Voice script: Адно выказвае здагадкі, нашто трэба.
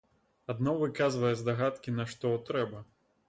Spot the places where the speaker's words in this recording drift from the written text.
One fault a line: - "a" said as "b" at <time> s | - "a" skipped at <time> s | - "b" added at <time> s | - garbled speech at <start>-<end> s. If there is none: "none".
none